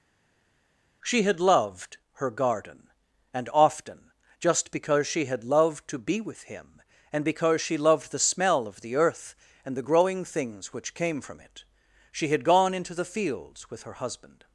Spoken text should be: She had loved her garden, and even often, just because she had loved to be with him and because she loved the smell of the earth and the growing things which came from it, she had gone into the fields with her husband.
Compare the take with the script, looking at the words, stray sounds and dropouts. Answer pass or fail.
fail